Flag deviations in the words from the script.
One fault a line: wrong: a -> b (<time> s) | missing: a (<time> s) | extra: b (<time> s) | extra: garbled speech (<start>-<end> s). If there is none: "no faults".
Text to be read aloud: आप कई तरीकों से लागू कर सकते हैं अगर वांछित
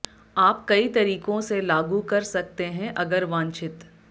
no faults